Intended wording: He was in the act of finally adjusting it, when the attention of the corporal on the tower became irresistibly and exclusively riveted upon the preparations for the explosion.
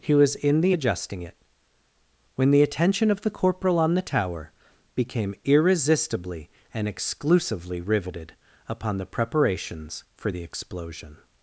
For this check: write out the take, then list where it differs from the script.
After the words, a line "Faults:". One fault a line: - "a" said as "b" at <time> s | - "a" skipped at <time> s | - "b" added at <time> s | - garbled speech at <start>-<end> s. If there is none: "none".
He was in the adjusting it, when the attention of the corporal on the tower became irresistibly and exclusively riveted upon the preparations for the explosion.
Faults:
- "act of finally" skipped at 0.8 s